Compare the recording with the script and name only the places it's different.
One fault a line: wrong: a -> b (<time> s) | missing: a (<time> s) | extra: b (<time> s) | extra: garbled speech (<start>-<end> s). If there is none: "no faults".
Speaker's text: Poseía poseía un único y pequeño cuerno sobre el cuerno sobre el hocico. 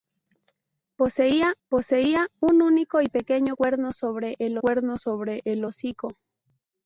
no faults